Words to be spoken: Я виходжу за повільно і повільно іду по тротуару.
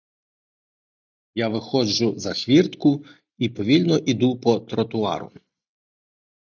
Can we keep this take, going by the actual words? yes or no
no